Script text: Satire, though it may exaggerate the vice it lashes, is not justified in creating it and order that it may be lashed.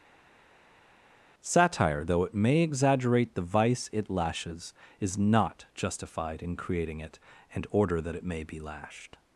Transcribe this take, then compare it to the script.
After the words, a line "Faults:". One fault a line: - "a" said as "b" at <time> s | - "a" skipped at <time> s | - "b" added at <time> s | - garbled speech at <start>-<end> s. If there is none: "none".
Satire, though it may exaggerate the vice it lashes, is not justified in creating it and order that it may be lashed.
Faults:
none